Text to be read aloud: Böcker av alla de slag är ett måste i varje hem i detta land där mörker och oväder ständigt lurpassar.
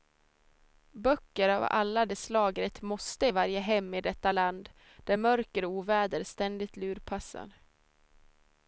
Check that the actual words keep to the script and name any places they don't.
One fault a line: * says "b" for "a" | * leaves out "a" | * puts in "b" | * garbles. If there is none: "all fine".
all fine